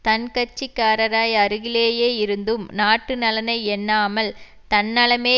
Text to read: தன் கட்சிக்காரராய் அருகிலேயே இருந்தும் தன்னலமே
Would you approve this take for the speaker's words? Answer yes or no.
no